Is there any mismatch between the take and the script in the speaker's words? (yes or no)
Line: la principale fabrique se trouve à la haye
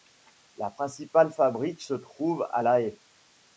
no